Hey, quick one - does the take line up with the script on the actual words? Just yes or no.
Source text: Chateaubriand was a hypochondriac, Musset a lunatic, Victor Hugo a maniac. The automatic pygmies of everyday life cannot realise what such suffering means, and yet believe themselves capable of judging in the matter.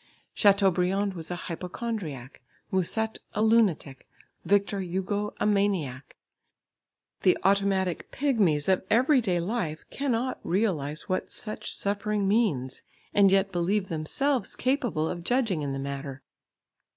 yes